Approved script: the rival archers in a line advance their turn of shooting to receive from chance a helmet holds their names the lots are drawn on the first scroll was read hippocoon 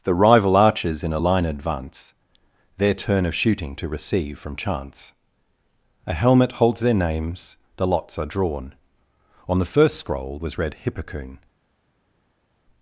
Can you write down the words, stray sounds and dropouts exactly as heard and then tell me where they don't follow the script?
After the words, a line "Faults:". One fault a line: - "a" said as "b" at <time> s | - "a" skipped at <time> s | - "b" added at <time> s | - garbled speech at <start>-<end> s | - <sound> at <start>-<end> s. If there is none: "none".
the rival archers in a line advance their turn of shooting to receive from chance a helmet holds their names the lots are drawn on the first scroll was read hippocoon
Faults:
none